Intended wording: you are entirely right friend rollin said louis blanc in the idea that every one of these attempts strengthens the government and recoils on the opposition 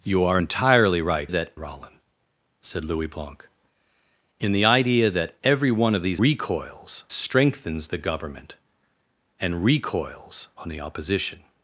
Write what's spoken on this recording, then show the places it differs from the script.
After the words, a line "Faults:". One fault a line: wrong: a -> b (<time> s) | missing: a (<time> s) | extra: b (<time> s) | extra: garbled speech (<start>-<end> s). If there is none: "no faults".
you are entirely right that rollin said louis blanc in the idea that every one of these recoils strengthens the government and recoils on the opposition
Faults:
wrong: friend -> that (1.3 s)
wrong: attempts -> recoils (6.2 s)